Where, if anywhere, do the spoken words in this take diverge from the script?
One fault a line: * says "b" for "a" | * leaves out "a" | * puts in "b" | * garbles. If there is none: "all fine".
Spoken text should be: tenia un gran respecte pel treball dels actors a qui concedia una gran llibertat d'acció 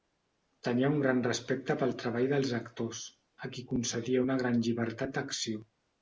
all fine